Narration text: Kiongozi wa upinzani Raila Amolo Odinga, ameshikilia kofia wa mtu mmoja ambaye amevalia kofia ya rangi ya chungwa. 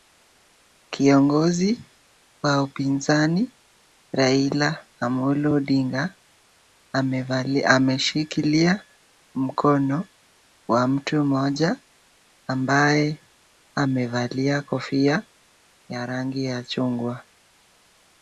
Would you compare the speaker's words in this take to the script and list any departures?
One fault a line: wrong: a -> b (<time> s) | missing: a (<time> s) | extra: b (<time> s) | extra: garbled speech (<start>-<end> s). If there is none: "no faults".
wrong: kofia -> mkono (9.3 s)